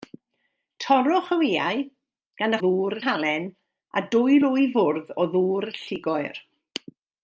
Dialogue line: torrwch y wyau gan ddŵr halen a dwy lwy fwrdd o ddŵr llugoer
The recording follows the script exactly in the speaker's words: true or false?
true